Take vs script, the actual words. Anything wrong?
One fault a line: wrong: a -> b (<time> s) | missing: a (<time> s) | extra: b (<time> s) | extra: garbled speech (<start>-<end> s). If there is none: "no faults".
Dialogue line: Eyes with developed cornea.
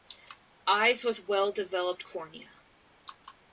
extra: well (1.3 s)